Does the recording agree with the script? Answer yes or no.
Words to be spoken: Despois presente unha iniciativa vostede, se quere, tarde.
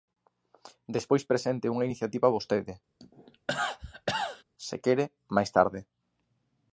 no